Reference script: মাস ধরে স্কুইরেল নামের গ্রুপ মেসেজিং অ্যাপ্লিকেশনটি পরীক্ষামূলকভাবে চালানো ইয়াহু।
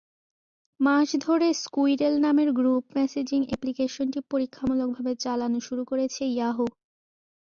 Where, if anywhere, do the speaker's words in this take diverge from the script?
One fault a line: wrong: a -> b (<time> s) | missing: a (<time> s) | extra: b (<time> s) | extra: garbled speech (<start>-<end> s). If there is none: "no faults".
extra: শুরু করেছে (5.7 s)